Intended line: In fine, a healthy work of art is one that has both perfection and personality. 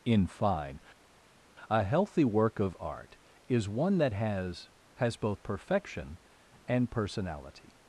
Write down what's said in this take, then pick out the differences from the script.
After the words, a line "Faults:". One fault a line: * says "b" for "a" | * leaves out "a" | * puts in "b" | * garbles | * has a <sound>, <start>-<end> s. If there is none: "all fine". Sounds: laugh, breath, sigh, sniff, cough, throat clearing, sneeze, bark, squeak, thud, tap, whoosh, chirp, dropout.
In fine, a healthy work of art is one that has has both perfection and personality.
Faults:
* puts in "has"